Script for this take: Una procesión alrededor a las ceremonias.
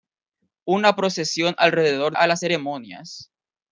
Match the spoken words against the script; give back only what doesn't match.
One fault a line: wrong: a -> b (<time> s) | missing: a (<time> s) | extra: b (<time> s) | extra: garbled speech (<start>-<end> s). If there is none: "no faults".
no faults